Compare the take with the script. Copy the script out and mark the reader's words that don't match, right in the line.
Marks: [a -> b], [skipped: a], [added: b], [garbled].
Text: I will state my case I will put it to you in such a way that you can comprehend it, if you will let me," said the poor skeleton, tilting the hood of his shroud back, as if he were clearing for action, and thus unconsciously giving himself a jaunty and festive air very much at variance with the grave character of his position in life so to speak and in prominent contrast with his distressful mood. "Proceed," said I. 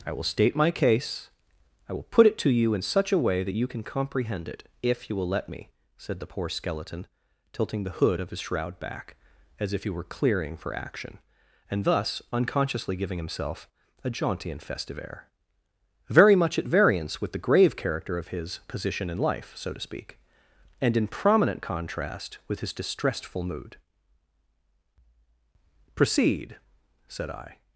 I will state my case I will put it to you in such a way that you can comprehend it, if you will let me," said the poor skeleton, tilting the hood of his shroud back, as if he were clearing for action, and thus unconsciously giving himself a jaunty and festive air very much at variance with the grave character of his position in life so to speak and in prominent contrast with his distressful mood. "Proceed," said I.